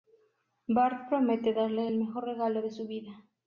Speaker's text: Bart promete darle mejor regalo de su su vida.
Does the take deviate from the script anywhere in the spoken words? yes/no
yes